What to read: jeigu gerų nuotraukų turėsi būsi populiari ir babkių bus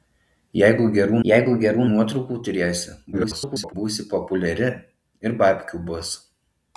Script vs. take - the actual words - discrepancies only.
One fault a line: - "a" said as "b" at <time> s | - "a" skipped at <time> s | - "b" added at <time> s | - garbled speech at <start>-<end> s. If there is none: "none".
- "jeigu gerų" added at 1.3 s
- garbled speech at 3.1-3.7 s